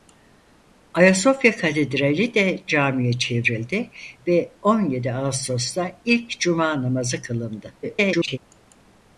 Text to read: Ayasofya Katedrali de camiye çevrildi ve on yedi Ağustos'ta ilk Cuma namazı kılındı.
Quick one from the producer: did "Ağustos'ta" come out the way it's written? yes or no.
yes